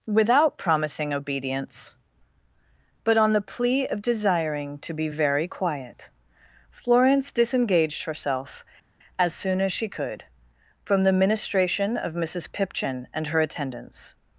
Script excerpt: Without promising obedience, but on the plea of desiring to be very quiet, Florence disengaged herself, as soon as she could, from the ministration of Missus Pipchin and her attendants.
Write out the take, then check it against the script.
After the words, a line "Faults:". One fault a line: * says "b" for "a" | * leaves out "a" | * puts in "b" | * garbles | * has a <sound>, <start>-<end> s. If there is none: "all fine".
Without promising obedience, but on the plea of desiring to be very quiet, Florence disengaged herself, as soon as she could, from the ministration of Missus Pipchin and her attendants.
Faults:
all fine